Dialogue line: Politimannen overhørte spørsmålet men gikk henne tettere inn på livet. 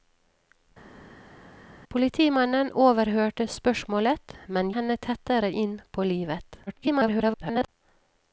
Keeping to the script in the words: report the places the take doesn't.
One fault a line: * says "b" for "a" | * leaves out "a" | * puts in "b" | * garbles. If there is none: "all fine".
* leaves out "gikk"
* garbles